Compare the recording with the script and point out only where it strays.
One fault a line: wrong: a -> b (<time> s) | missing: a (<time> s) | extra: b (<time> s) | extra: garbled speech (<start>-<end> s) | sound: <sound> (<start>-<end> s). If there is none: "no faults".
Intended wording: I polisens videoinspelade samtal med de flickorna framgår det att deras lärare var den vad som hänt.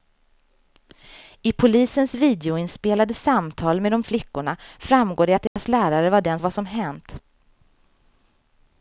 sound: dropout (5.5-5.6 s)